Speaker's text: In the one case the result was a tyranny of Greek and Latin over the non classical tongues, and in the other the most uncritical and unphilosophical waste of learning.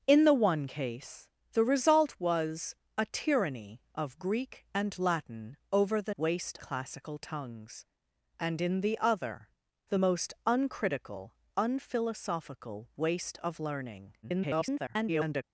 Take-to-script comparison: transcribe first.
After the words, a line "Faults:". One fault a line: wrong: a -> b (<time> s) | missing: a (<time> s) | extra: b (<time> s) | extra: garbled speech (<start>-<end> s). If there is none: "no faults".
In the one case the result was a tyranny of Greek and Latin over the waste classical tongues, and in the other the most uncritical unphilosophical waste of learning. [garbled]
Faults:
wrong: non -> waste (6.2 s)
missing: and (11.3 s)
extra: garbled speech (14.2-15.4 s)